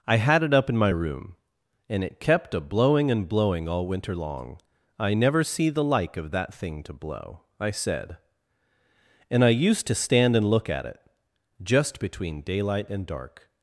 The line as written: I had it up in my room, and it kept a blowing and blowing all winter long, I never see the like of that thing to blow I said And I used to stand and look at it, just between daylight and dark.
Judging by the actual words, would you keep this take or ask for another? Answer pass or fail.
pass